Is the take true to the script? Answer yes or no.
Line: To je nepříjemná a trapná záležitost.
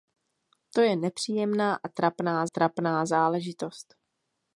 no